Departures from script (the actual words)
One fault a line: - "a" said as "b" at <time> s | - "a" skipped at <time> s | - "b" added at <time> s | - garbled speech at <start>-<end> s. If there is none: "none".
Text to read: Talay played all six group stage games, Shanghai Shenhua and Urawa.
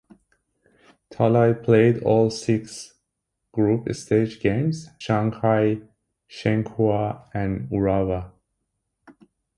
none